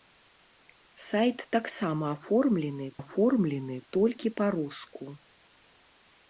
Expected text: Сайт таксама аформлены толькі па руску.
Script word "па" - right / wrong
right